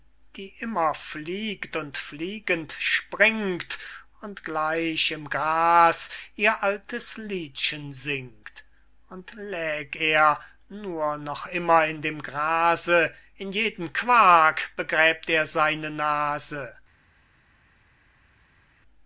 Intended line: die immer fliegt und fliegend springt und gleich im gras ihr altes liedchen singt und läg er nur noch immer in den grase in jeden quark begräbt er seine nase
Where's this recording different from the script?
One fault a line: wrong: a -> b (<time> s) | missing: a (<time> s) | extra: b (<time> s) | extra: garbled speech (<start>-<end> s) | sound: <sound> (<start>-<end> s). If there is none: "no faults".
wrong: den -> dem (12.0 s)